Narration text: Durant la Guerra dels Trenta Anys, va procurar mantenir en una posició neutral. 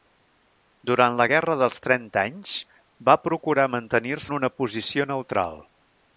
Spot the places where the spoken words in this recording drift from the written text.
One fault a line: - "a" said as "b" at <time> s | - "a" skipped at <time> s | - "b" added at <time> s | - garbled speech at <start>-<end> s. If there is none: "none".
none